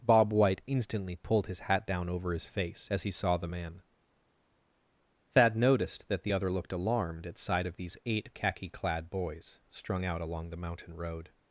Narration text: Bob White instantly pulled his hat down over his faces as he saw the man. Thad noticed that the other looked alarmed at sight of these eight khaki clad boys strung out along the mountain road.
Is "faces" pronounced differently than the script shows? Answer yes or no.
yes